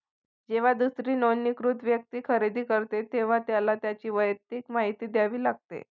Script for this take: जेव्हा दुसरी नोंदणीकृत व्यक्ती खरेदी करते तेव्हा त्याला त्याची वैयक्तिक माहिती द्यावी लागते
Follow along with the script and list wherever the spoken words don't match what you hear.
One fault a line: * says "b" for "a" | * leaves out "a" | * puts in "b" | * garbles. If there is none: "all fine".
all fine